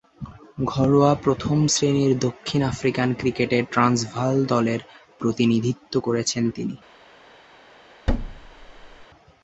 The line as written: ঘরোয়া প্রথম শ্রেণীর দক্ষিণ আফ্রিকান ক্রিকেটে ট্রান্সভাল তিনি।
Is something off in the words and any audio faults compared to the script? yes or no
yes